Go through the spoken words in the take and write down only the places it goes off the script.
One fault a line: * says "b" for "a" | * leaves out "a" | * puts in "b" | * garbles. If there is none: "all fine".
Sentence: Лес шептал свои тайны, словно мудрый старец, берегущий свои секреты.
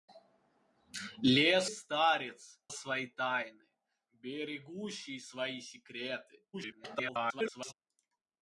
* says "старец" for "шептал"
* leaves out "словно мудрый старец"
* garbles